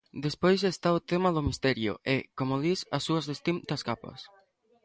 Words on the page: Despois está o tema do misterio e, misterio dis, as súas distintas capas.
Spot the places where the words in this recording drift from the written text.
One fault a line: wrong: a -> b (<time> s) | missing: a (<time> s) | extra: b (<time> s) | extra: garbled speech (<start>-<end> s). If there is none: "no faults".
wrong: misterio -> como (2.4 s)